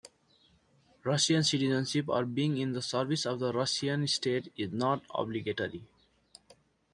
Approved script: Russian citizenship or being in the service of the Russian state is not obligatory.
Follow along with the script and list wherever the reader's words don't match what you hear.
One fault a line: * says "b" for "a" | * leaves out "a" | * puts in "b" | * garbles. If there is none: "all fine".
all fine